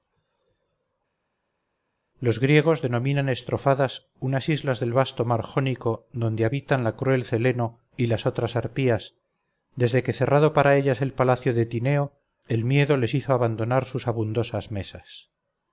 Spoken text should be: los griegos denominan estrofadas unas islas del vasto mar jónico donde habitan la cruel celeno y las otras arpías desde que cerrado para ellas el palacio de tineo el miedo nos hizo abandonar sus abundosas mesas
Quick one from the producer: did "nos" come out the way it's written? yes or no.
no